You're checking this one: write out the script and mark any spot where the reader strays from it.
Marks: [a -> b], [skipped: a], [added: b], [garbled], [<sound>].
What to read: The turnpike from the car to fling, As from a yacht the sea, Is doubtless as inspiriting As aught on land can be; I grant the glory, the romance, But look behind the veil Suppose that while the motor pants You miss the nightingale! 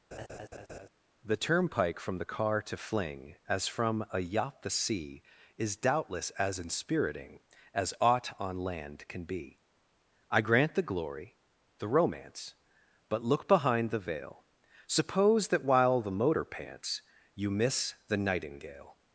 [laugh] The turnpike from the car to fling, As from a yacht the sea, Is doubtless as inspiriting As aught on land can be; I grant the glory, the romance, But look behind the veil Suppose that while the motor pants You miss the nightingale!